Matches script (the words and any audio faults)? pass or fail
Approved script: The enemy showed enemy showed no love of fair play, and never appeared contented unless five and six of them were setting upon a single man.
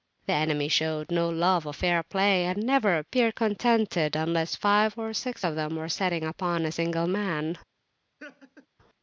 fail